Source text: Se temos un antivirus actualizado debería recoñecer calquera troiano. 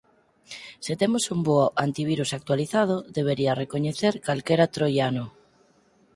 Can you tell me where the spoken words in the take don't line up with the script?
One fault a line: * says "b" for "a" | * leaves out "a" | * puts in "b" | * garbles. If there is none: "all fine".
* puts in "bo"